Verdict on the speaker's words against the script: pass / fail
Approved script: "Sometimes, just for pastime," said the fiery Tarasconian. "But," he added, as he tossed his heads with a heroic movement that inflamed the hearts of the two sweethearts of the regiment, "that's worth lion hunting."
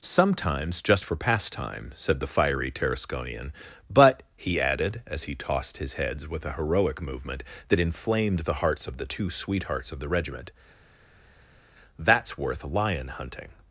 pass